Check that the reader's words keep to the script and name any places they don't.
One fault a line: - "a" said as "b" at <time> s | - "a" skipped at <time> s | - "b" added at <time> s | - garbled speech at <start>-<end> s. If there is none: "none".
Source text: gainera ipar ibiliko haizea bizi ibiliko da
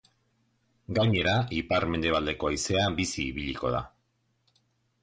- "ibiliko" said as "mendebaldeko" at 2.0 s